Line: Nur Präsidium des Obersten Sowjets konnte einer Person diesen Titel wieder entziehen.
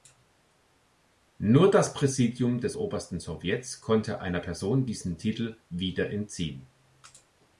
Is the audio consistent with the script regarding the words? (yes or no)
no